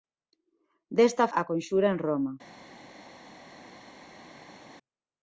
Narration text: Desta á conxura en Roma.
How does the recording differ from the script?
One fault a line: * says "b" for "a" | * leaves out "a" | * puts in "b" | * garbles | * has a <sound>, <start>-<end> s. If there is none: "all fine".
all fine